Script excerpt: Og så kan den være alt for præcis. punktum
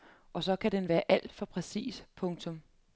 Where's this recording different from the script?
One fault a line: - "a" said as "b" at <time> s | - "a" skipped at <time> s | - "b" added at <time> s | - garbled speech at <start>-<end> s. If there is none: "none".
none